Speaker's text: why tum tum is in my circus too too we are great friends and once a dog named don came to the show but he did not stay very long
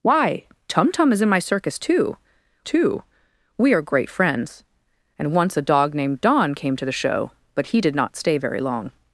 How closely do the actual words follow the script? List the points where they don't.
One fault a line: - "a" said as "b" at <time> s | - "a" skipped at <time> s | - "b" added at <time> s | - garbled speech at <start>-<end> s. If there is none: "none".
none